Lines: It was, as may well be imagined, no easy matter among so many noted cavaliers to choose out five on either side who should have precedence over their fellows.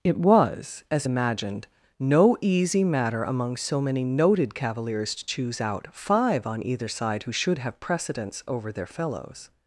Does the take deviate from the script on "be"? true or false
true